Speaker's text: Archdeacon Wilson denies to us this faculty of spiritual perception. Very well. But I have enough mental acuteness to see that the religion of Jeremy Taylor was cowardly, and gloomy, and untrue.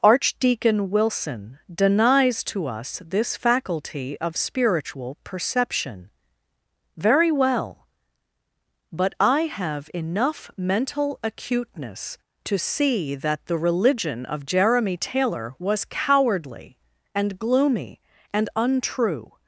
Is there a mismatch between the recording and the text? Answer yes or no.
no